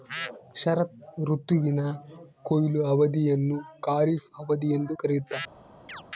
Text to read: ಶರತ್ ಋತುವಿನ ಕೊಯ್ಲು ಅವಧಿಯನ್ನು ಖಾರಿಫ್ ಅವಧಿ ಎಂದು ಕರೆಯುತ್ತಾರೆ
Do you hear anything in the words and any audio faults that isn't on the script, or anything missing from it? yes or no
yes